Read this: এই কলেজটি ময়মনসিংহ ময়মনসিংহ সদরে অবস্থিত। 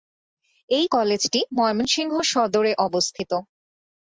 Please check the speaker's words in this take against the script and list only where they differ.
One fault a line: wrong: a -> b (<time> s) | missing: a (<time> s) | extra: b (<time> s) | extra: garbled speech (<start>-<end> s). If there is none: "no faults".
missing: ময়মনসিংহ (2.1 s)